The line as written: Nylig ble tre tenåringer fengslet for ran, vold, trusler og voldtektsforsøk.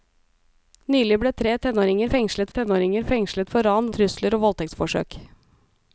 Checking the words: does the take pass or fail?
fail